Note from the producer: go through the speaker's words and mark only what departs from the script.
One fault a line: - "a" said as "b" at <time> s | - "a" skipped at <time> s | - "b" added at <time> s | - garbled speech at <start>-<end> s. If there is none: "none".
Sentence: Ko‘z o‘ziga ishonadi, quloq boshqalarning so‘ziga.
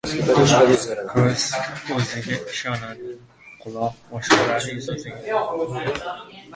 none